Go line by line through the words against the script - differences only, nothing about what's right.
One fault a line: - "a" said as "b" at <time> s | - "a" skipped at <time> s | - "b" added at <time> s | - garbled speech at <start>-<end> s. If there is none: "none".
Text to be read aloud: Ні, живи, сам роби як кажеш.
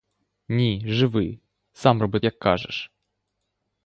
none